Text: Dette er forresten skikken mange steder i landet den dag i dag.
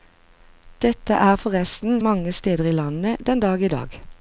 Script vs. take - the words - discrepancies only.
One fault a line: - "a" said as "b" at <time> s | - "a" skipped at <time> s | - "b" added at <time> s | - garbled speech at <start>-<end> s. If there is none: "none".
- "skikken" skipped at 2.0 s